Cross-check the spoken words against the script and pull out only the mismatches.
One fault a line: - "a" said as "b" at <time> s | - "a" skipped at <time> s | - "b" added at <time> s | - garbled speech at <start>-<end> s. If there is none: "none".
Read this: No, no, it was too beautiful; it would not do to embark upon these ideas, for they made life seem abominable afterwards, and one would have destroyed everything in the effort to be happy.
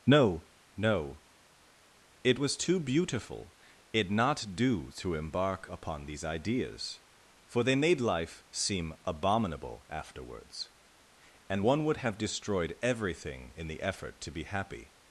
- "would" skipped at 4.1 s